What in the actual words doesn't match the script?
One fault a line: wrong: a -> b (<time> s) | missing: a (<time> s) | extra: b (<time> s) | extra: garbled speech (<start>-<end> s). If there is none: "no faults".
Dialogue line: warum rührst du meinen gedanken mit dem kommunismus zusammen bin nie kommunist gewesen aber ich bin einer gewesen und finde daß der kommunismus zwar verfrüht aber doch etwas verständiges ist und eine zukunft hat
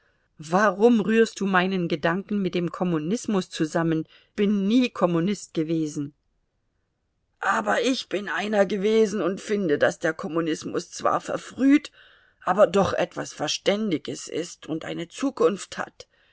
no faults